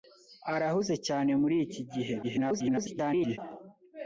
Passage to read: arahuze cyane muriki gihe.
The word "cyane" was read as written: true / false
true